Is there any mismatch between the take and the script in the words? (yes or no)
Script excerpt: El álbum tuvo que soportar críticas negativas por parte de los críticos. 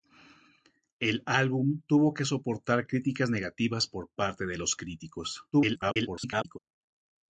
yes